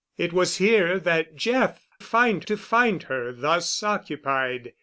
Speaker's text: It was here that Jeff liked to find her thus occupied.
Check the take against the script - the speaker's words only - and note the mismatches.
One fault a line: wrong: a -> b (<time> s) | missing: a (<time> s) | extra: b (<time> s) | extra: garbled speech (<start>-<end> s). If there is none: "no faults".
wrong: liked -> find (2.0 s)